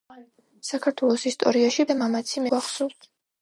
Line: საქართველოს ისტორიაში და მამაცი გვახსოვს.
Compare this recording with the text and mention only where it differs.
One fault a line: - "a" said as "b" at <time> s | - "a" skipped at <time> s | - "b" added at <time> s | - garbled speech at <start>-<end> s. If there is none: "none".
none